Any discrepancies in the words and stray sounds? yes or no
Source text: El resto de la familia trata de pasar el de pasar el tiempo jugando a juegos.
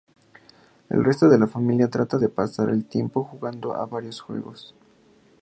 yes